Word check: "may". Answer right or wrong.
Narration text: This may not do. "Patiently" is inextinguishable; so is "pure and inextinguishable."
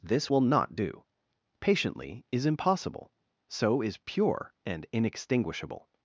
wrong